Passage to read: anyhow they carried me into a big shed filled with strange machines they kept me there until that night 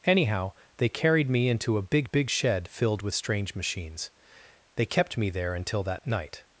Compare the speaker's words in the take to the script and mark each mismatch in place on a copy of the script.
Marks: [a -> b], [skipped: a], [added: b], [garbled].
anyhow they carried me into a big [added: big] shed filled with strange machines they kept me there until that night